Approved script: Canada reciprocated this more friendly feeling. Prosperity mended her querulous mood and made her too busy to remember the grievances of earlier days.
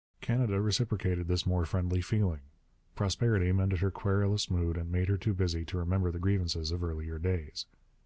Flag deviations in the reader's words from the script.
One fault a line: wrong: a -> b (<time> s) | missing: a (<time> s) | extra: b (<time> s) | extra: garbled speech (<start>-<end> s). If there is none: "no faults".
no faults